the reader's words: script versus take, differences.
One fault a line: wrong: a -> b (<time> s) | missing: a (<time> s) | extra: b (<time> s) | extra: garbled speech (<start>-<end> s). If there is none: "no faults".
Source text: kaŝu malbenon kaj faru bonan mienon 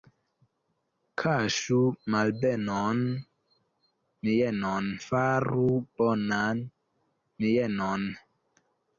wrong: kaj -> mienon (4.3 s)